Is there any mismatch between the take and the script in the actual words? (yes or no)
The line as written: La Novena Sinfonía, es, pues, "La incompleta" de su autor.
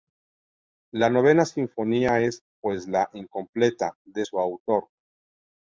no